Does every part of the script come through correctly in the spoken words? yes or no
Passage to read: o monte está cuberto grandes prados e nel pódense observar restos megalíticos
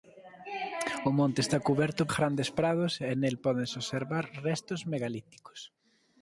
yes